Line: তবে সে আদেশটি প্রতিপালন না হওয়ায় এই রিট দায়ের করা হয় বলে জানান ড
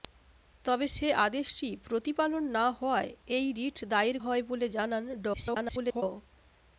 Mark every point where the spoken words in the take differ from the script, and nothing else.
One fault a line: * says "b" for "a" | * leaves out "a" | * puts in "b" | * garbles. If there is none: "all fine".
* leaves out "করা"
* garbles